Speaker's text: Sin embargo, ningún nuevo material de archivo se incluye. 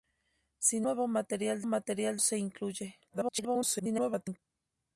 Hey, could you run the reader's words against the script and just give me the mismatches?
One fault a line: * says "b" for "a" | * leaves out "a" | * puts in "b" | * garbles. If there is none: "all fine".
* leaves out "embargo ningún"
* says "material" for "archivo"
* garbles